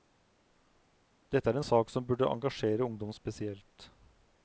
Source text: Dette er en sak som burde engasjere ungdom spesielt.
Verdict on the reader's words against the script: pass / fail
pass